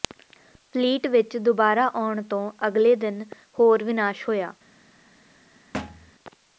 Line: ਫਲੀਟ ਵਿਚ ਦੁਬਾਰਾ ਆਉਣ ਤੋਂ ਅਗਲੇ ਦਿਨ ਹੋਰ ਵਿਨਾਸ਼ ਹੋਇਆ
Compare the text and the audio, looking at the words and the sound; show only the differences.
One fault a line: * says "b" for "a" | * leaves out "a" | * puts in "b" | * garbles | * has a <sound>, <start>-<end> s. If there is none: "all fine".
* has a thud, 5.7-6.1 s